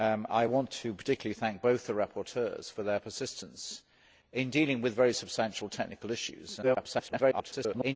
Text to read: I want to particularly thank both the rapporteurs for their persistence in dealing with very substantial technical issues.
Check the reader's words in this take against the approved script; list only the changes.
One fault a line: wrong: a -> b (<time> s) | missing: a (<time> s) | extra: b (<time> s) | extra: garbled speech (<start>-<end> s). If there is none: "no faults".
extra: garbled speech (6.6-8.0 s)